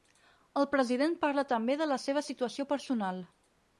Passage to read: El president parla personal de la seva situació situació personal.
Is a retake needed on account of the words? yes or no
yes